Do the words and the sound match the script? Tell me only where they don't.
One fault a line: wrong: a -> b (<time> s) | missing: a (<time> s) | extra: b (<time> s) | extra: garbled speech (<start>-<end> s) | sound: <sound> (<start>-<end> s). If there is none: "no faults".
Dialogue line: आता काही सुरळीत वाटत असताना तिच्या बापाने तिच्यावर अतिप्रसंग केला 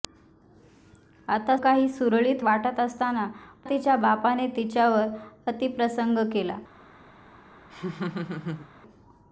sound: laugh (7.7-8.7 s)